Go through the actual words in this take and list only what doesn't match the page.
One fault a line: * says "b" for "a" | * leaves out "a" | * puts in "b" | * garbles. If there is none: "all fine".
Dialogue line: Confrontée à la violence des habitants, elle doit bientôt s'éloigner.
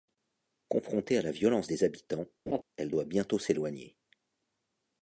all fine